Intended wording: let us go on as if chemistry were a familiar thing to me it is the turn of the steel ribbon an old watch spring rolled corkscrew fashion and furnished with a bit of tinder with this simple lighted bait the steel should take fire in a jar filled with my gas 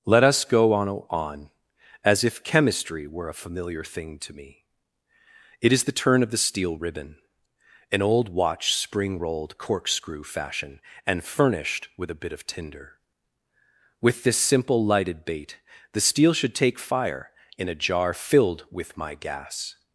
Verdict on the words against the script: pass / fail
fail